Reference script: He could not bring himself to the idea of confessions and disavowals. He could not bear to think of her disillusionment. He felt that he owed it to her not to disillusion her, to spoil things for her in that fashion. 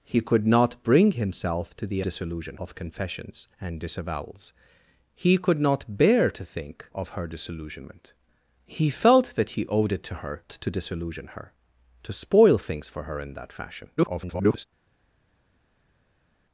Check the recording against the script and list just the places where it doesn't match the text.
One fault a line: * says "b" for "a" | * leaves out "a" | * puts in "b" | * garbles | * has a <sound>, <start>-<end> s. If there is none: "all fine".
* says "disillusion" for "idea"
* leaves out "not"
* garbles